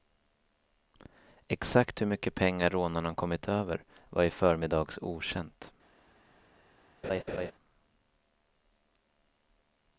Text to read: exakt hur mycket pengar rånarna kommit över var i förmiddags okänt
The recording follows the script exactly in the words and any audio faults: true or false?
false